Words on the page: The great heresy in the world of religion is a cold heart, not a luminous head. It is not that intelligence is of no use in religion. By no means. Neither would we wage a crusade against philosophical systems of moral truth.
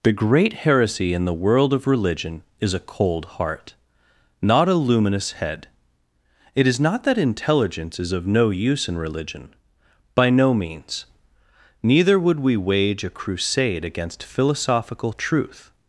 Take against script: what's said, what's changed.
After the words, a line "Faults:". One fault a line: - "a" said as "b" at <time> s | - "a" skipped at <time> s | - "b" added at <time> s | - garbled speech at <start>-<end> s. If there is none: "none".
The great heresy in the world of religion is a cold heart, not a luminous head. It is not that intelligence is of no use in religion. By no means. Neither would we wage a crusade against philosophical truth.
Faults:
- "systems of moral" skipped at 15.1 s